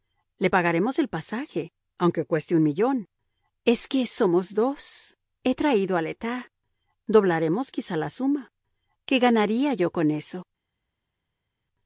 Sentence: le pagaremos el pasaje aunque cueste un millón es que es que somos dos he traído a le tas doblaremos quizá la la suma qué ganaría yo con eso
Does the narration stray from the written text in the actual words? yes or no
yes